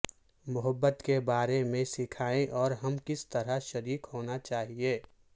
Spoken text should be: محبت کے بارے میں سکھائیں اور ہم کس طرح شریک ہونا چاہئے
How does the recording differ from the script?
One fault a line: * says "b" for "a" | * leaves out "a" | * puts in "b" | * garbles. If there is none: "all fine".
all fine